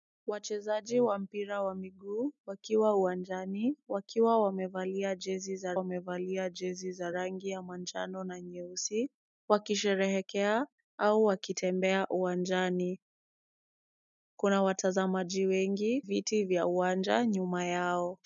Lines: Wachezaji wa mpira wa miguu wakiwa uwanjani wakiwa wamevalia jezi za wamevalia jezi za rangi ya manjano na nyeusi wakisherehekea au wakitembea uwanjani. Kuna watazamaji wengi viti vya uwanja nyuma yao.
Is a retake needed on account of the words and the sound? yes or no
no